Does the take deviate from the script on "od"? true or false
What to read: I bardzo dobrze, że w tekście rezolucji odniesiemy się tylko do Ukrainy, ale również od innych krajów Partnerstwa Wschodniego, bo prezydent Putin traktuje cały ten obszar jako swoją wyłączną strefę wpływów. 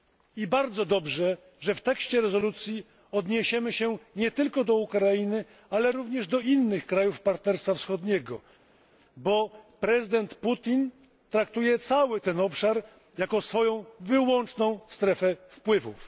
true